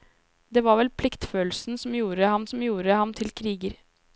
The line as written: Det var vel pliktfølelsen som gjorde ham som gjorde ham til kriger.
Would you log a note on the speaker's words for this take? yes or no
no